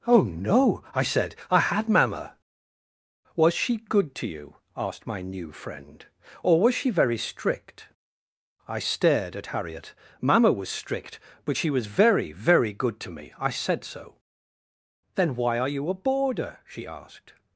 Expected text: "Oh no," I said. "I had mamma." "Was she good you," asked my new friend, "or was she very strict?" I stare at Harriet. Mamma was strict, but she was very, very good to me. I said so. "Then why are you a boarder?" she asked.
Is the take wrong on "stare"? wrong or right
wrong